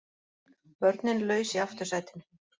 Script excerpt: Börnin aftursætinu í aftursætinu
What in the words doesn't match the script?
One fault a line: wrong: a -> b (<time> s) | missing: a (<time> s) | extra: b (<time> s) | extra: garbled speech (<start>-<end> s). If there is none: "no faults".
wrong: aftursætinu -> laus (1.3 s)